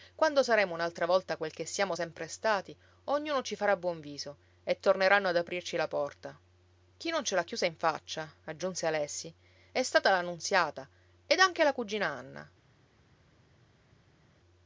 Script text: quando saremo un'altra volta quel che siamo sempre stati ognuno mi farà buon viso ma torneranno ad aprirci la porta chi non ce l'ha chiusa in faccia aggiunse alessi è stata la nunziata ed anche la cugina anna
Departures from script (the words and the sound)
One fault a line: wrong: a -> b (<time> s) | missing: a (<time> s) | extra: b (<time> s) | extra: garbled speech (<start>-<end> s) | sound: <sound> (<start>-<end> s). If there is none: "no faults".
wrong: mi -> ci (3.4 s)
wrong: ma -> e (4.6 s)